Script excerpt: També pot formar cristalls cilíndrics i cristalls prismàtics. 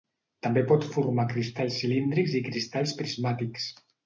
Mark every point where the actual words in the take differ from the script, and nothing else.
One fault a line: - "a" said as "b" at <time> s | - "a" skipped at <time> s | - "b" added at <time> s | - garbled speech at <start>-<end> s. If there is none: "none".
none